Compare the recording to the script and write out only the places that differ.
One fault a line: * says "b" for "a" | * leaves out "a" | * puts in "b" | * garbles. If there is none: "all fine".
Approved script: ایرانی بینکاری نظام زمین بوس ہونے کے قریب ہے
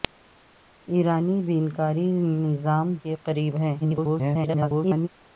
* leaves out "زمین بوس ہونے"
* garbles